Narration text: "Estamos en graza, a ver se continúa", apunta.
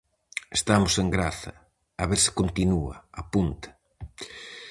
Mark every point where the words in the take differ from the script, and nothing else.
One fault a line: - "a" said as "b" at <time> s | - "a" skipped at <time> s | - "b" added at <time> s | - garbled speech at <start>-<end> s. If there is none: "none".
none